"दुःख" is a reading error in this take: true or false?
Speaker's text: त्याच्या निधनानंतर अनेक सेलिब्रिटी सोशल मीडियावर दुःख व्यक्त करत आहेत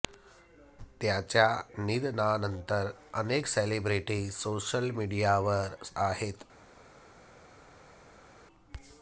true